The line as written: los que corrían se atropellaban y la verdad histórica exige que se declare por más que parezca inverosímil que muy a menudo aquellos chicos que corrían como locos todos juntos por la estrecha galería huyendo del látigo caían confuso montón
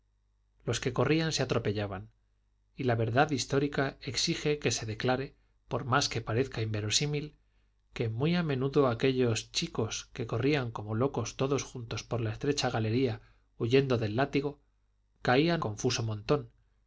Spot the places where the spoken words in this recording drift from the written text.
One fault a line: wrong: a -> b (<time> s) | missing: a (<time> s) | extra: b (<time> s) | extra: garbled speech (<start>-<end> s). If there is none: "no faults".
no faults